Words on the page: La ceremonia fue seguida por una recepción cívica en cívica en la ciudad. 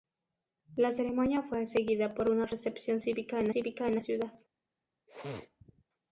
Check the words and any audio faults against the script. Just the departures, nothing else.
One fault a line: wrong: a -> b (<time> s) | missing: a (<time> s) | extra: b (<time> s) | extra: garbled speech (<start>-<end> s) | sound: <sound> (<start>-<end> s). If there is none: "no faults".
sound: sneeze (5.1-5.8 s)